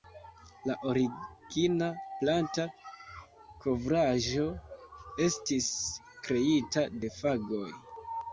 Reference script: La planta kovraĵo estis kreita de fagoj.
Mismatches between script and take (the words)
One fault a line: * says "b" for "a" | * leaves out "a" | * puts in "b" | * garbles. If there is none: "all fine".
* puts in "origina"